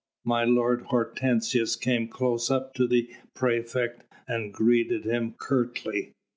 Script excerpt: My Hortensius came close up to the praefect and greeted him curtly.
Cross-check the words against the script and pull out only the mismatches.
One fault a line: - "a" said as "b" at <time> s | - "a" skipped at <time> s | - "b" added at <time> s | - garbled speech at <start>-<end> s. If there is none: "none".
- "lord" added at 0.5 s